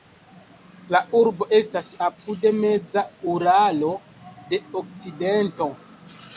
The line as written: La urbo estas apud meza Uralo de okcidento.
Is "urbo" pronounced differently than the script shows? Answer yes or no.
no